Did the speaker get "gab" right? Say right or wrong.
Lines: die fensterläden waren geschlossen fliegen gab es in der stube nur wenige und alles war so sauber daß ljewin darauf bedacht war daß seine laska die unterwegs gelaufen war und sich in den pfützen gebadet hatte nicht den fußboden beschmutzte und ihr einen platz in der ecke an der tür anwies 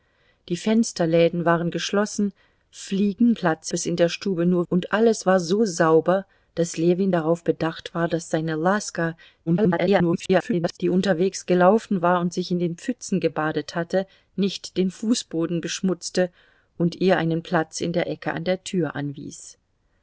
wrong